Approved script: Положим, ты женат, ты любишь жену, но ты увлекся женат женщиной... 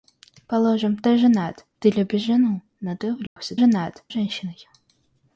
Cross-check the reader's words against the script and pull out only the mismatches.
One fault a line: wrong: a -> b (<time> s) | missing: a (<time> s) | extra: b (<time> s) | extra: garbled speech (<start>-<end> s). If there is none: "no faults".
no faults